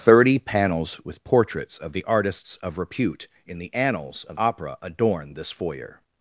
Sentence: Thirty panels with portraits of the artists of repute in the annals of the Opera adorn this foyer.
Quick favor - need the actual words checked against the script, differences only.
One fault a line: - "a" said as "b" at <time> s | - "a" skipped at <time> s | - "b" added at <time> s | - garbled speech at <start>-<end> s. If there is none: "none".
- "the" skipped at 4.4 s